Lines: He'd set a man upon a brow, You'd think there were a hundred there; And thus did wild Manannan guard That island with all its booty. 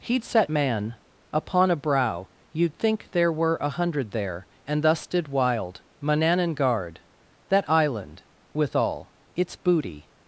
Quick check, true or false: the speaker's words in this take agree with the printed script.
false